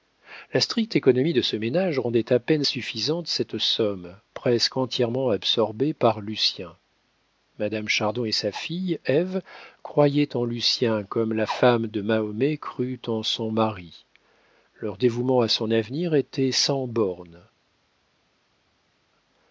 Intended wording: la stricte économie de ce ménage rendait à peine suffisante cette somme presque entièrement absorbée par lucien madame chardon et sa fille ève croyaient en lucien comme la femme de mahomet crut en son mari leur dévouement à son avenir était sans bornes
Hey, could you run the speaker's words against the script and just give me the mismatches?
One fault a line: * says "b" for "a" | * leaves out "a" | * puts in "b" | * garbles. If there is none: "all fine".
all fine